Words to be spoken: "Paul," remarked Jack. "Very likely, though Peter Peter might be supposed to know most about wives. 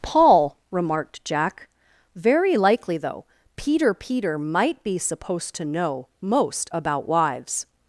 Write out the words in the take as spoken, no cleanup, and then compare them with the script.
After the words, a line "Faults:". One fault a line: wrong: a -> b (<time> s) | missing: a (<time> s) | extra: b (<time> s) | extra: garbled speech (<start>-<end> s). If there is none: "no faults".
"Paul," remarked Jack. "Very likely, though Peter Peter might be supposed to know most about wives.
Faults:
no faults